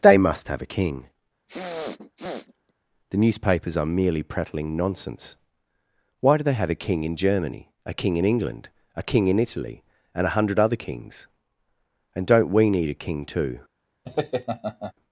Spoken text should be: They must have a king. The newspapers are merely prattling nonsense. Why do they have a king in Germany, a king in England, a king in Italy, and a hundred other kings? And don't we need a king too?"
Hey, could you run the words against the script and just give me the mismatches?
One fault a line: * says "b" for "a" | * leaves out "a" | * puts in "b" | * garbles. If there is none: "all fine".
all fine